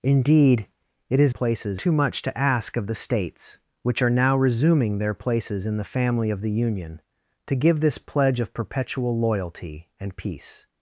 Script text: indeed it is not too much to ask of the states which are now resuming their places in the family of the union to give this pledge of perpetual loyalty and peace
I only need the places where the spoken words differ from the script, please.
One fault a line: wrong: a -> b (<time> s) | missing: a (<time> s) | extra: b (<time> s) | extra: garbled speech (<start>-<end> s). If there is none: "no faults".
wrong: not -> places (1.3 s)